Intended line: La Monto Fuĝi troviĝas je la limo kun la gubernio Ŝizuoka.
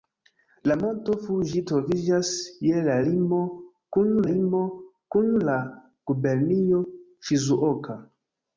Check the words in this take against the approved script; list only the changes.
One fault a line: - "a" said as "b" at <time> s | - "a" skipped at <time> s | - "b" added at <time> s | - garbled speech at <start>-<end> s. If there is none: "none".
- "limo kun" added at 4.3 s